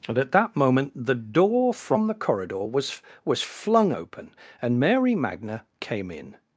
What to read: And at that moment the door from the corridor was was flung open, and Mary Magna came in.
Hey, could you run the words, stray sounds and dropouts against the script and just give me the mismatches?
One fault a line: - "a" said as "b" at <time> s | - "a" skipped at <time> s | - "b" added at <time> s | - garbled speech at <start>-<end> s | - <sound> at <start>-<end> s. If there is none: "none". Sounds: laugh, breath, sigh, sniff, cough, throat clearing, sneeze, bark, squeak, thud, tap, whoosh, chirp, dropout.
none